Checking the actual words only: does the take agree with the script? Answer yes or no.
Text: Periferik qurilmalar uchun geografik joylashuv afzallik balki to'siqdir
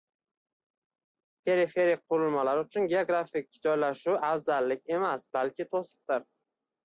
no